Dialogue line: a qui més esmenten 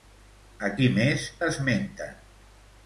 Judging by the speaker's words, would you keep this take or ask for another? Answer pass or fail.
pass